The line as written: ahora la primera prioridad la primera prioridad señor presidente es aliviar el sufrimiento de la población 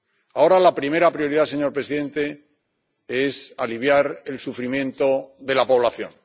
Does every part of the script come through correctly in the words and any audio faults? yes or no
no